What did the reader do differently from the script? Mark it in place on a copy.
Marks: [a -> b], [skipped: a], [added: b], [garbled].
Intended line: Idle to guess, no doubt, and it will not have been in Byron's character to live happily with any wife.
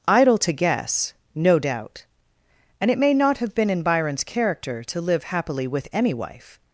Idle to guess, no doubt, and it [will -> may] not have been in Byron's character to live happily with any wife.